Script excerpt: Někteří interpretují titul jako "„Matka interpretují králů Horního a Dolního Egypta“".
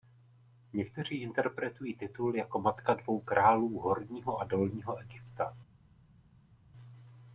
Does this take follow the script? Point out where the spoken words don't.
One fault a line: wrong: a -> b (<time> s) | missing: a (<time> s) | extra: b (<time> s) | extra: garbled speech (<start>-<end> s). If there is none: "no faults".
wrong: interpretují -> dvou (2.9 s)